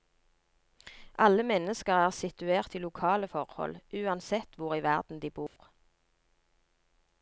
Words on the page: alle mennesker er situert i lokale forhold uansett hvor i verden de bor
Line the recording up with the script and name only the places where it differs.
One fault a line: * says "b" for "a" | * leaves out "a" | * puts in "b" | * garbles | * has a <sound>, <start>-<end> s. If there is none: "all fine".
* has a dropout, 5.5-5.6 s